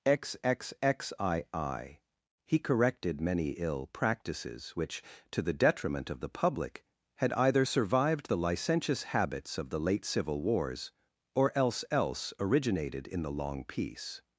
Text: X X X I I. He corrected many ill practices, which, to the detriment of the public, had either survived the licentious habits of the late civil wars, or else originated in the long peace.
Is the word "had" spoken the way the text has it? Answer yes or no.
yes